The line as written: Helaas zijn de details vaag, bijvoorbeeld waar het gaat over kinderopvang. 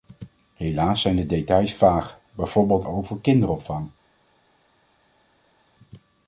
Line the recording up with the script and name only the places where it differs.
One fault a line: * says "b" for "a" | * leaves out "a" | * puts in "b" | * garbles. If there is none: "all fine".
* leaves out "waar het gaat"